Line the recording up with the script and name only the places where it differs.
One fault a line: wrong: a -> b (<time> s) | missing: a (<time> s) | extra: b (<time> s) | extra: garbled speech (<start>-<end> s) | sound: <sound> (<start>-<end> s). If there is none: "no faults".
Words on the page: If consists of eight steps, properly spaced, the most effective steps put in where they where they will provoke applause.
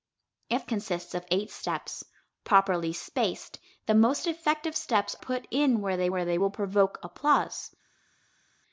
no faults